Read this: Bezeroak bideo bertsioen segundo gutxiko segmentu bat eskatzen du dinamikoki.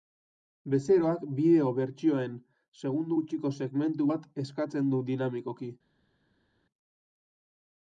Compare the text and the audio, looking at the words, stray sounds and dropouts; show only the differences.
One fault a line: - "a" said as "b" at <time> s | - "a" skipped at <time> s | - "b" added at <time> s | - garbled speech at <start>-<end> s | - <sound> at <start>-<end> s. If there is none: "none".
none